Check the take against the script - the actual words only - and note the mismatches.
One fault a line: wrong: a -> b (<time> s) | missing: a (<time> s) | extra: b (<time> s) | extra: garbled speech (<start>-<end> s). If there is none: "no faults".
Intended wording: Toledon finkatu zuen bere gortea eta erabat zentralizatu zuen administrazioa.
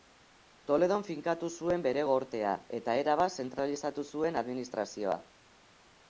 no faults